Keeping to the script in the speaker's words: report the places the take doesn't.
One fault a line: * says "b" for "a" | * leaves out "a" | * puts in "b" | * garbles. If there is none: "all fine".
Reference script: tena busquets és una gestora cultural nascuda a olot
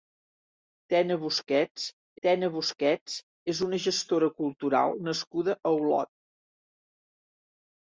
* puts in "tena busquets"